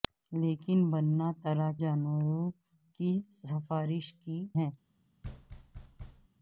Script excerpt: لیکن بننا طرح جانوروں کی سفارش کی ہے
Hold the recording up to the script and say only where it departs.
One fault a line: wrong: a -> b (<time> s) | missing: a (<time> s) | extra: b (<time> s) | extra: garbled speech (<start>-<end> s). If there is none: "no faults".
no faults